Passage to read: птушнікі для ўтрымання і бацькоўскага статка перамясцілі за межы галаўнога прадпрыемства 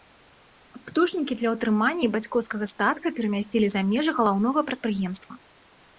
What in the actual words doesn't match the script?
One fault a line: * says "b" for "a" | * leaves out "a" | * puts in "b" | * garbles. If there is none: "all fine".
all fine